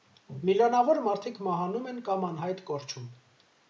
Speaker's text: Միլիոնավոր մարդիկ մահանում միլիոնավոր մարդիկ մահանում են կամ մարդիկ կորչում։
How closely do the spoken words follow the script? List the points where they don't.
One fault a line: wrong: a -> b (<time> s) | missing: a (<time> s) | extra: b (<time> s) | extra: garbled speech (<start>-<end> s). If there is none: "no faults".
missing: միլիոնավոր մարդիկ մահանում (1.9 s)
wrong: մարդիկ -> անհայտ (2.3 s)